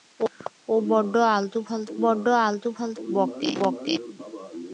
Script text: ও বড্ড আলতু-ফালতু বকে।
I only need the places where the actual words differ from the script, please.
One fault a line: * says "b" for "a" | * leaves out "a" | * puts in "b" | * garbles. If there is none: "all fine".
* puts in "বড্ড আলতু-ফালতু"